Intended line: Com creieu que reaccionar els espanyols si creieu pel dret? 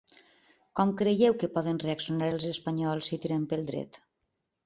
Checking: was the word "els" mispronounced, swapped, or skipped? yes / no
no